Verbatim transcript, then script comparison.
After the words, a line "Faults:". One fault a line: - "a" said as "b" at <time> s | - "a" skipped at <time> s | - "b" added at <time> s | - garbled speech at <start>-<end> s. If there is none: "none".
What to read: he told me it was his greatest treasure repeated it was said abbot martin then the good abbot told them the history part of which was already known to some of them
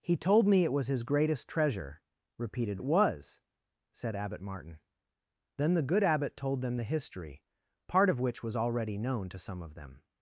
he told me it was his greatest treasure repeated it was said abbot martin then the good abbot told them the history part of which was already known to some of them
Faults:
none